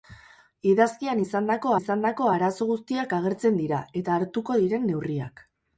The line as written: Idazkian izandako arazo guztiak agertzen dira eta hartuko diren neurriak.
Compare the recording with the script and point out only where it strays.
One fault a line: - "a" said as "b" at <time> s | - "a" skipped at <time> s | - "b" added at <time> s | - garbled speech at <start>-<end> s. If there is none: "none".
- "izandako" added at 1.8 s